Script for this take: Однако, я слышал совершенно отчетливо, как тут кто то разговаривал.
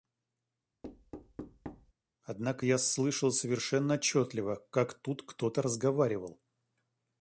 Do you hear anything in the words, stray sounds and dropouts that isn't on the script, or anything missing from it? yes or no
yes